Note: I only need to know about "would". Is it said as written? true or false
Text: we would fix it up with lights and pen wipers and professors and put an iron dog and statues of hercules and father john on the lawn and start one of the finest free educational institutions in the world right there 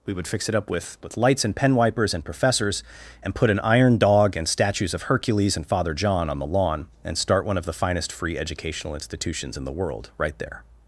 true